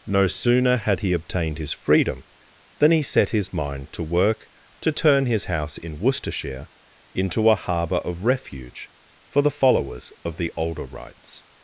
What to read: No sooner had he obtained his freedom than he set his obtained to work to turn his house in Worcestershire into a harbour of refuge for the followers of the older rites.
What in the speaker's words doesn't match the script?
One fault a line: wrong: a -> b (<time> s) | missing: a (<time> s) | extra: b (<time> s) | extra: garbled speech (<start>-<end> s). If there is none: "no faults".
wrong: obtained -> mind (3.5 s)